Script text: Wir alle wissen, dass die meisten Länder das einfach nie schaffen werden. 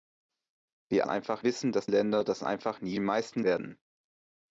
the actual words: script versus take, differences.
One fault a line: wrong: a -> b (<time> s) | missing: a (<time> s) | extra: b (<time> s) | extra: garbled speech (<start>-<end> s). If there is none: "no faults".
wrong: alle -> einfach (1.1 s)
missing: die meisten (1.9 s)
wrong: schaffen -> meisten (3.0 s)